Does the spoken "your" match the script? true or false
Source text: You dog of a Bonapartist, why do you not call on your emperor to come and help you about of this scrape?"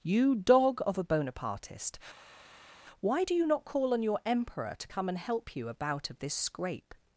true